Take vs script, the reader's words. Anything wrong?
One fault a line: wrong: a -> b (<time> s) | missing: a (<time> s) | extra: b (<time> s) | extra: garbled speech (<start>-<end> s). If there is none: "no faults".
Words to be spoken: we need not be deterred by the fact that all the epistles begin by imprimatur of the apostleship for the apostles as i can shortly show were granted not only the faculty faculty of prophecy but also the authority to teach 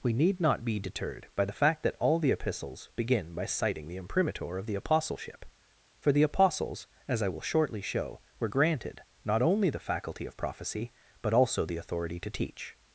extra: citing the (3.5 s)
wrong: can -> will (7.3 s)
missing: faculty (10.3 s)